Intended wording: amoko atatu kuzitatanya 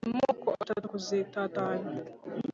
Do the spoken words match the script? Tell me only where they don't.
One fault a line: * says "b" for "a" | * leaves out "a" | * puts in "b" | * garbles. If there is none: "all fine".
all fine